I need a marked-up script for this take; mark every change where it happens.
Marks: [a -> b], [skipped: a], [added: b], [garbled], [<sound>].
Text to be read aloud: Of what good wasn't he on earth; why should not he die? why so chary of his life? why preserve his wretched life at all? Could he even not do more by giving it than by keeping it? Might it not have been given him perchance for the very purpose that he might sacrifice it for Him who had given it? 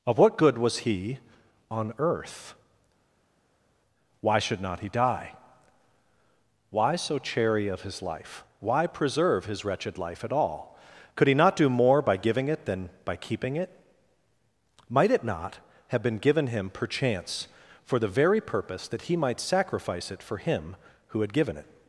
Of what good [wasn't -> was] he on earth; why should not he die? why so chary of his life? why preserve his wretched life at all? Could he [skipped: even] not do more by giving it than by keeping it? Might it not have been given him perchance for the very purpose that he might sacrifice it for Him who had given it?